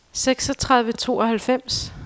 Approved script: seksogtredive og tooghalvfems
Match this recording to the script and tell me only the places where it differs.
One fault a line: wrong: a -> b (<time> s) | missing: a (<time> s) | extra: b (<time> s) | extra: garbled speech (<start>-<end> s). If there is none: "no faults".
no faults